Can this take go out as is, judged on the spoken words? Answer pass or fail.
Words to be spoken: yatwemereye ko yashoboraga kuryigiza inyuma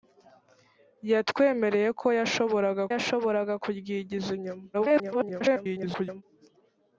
fail